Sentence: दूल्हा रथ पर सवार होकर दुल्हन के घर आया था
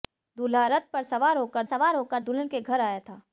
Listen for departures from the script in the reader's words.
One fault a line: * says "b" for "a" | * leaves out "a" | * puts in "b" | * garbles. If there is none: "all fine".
* puts in "सवार होकर"